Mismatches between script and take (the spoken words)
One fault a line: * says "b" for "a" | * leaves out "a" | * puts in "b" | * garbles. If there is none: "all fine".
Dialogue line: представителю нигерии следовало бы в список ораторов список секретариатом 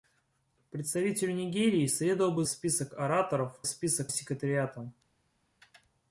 all fine